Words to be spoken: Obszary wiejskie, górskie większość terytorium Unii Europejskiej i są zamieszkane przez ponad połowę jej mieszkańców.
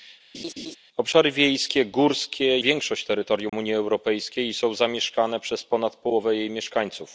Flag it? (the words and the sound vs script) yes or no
yes